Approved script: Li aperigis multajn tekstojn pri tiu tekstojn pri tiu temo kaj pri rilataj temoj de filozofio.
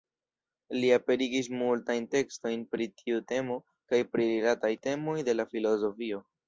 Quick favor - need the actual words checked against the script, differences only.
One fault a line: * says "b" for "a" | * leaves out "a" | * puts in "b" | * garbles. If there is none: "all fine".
* leaves out "tekstojn pri tiu"
* puts in "la"